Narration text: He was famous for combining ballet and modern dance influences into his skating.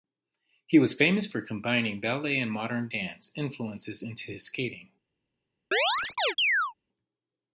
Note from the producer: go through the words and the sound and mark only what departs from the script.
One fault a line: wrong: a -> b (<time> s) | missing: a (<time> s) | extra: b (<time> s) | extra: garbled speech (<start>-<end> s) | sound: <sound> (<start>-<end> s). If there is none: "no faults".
sound: chirp (5.7-6.7 s)